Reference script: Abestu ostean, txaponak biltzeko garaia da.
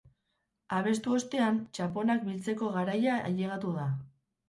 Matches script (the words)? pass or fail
fail